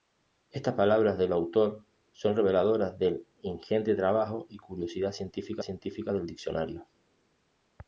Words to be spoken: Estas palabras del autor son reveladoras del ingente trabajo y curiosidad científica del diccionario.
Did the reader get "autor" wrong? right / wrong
right